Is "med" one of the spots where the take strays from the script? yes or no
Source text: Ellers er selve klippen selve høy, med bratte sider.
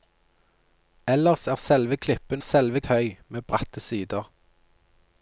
no